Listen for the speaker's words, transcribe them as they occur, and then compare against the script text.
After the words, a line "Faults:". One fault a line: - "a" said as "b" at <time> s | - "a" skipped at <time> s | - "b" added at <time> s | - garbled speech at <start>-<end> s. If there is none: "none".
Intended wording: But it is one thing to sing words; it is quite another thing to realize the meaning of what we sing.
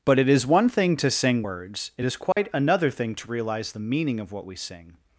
But it is one thing to sing words; it is quite another thing to realize the meaning of what we sing.
Faults:
none